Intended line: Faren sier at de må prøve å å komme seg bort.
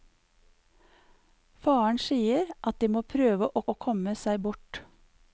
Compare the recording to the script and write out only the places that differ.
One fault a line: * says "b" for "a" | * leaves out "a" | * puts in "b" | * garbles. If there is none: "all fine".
all fine